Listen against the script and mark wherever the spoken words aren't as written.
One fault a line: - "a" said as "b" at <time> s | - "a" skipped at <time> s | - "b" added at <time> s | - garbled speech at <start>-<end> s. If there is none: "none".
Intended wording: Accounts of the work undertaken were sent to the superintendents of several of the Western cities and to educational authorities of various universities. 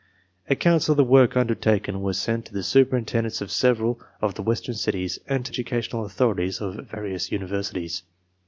none